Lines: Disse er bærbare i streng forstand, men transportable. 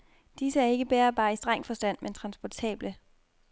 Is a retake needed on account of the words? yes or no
yes